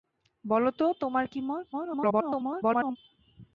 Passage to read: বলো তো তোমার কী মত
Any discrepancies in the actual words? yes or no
yes